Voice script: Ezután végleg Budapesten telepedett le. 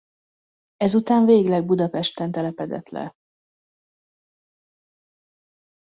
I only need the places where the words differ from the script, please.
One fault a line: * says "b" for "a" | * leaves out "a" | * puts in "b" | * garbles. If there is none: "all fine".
all fine